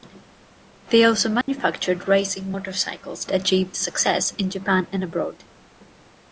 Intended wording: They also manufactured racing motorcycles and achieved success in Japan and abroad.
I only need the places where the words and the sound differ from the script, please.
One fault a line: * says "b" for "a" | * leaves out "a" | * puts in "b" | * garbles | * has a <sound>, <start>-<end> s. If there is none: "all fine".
* has a dropout, 1.4-1.5 s
* leaves out "and"